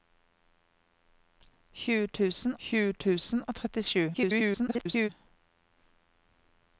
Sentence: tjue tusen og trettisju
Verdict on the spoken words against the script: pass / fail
fail